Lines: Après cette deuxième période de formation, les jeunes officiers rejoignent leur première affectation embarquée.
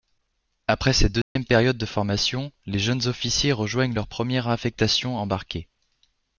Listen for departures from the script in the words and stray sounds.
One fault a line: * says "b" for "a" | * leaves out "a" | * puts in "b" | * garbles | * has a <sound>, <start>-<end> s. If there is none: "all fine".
* has a dropout, 1.2-1.4 s